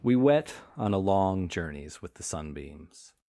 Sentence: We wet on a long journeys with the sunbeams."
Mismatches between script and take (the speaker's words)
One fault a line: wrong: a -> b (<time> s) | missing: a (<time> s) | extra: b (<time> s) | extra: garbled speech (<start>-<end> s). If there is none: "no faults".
no faults